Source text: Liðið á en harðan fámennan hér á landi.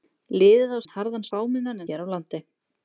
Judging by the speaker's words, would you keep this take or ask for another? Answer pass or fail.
pass